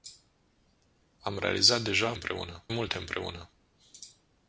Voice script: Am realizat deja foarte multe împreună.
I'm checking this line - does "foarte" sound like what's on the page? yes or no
no